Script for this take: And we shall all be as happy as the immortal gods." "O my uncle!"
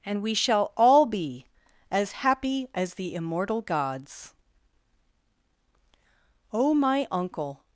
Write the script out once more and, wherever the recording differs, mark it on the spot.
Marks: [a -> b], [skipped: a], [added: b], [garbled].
And we shall all be as happy as the immortal gods." "O my uncle!"